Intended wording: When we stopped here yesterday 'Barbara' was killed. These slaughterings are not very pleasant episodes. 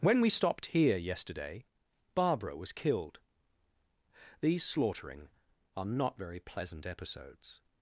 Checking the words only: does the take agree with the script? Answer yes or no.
no